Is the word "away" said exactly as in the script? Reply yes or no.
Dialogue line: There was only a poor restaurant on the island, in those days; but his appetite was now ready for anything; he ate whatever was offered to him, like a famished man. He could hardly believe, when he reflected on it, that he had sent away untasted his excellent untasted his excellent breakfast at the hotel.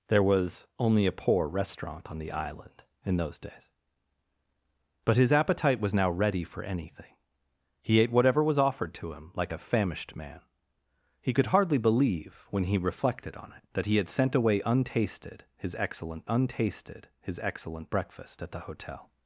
yes